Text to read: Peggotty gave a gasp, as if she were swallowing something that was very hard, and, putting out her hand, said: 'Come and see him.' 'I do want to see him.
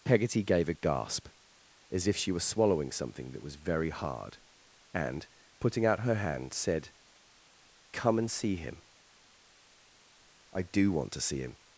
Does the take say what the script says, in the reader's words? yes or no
yes